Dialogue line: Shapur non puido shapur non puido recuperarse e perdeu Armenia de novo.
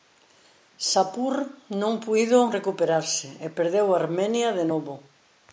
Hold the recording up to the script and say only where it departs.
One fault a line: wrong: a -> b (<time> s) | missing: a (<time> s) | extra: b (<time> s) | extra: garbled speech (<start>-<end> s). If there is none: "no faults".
missing: shapur non puido (2.4 s)